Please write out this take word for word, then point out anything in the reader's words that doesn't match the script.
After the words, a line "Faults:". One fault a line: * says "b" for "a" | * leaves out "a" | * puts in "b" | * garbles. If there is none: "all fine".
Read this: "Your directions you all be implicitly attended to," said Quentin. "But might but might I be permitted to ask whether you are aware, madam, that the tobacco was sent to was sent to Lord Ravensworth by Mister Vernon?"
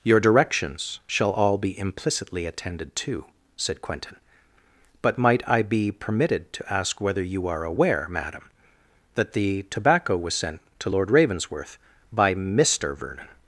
"Your directions shall all be implicitly attended to," said Quentin. "But might I be permitted to ask whether you are aware, madam, that the tobacco was sent to Lord Ravensworth by Mister Vernon?"
Faults:
* says "shall" for "you"
* leaves out "but might"
* leaves out "was sent to"